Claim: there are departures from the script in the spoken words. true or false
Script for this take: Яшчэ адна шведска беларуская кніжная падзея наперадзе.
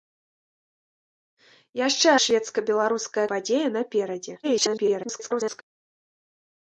true